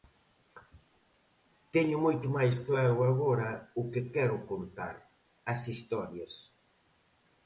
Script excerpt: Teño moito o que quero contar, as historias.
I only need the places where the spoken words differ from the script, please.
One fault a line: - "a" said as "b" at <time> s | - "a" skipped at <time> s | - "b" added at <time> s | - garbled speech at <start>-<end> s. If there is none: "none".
- "máis claro agora" added at 2.4 s